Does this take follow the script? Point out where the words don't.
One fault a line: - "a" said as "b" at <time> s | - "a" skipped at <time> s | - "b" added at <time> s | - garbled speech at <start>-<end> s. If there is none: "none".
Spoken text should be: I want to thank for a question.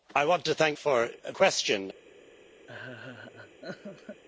none